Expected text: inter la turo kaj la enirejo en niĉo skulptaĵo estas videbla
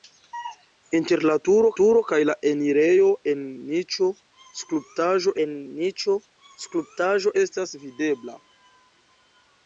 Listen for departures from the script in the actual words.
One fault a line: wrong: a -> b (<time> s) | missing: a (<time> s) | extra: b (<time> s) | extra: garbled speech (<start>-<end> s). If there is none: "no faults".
extra: turo (1.8 s)
extra: en niĉo skulptaĵo (5.4 s)